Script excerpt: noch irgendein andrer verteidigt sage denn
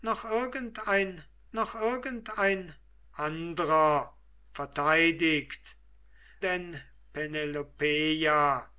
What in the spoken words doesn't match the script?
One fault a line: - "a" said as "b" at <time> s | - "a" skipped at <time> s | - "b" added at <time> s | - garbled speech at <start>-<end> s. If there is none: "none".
- "noch irgendein" added at 1.5 s
- "sage" skipped at 5.8 s